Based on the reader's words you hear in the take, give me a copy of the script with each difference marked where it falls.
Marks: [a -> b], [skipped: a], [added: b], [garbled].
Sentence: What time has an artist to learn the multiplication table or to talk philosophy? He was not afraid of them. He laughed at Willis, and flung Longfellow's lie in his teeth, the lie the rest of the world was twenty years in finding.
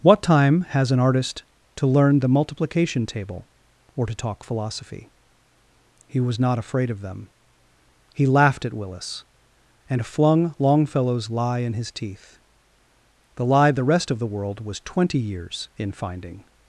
What time has an artist to learn the multiplication table or to talk philosophy? He was not afraid of them. He laughed at Willis, and flung Longfellow's lie in his teeth, the lie the rest of the world was twenty years in finding.